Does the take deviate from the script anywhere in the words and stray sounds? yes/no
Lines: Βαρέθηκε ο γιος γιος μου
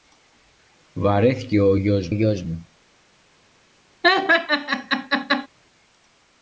yes